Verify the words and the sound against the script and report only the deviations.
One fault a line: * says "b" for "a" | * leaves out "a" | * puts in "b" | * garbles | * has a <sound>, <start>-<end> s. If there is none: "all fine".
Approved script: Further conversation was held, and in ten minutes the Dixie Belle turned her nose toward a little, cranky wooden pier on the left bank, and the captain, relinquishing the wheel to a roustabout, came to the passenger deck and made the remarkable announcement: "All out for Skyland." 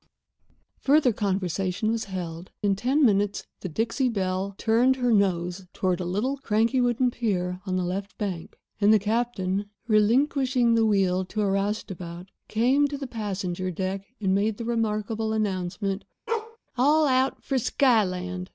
* leaves out "and"
* has a bark, 16.3-16.6 s